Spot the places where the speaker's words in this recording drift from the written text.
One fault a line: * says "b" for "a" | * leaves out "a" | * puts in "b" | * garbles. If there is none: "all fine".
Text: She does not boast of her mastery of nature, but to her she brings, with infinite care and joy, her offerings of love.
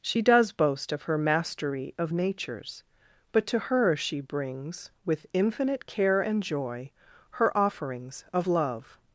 * leaves out "not"
* says "natures" for "nature"